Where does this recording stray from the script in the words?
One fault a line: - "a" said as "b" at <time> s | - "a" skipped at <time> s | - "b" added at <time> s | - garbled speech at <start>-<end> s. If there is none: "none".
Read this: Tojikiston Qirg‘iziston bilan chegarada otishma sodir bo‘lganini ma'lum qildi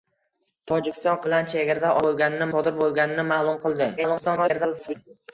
- "Qirg‘iziston" skipped at 1.2 s
- "otishma" said as "bo‘lganini" at 2.0 s
- garbled speech at 4.0-4.9 s